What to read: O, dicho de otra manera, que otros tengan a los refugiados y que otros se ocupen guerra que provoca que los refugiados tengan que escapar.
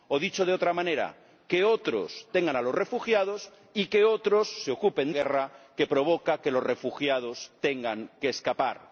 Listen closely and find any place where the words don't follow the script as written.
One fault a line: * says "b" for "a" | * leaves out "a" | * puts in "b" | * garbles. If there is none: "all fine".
all fine